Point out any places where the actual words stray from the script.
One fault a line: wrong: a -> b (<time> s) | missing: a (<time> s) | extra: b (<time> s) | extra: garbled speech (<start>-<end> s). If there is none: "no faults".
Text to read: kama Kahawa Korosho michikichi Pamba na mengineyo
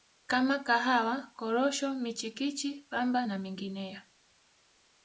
no faults